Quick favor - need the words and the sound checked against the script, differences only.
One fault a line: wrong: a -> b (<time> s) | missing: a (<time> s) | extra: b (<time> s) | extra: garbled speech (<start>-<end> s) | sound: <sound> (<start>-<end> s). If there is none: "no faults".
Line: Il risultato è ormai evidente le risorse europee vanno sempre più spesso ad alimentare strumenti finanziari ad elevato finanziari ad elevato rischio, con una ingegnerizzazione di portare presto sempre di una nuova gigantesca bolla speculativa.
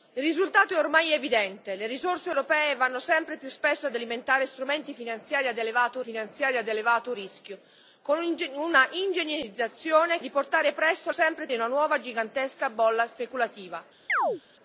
sound: chirp (14.1-14.4 s)